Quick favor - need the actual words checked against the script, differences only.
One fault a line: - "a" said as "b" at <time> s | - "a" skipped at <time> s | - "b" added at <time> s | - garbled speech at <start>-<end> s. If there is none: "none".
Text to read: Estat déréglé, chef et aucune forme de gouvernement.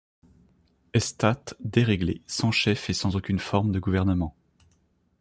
- "sans" added at 2.2 s
- "sans" added at 2.9 s